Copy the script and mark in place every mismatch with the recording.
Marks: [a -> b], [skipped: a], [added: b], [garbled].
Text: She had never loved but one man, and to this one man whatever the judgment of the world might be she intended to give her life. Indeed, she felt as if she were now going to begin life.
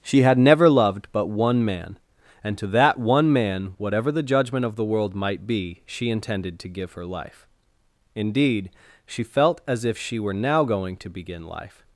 She had never loved but one man, and to [this -> that] one man whatever the judgment of the world might be she intended to give her life. Indeed, she felt as if she were now going to begin life.